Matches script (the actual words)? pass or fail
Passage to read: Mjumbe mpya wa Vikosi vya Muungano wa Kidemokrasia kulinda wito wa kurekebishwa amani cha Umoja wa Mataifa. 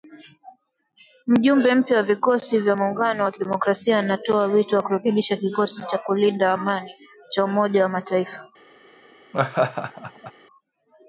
fail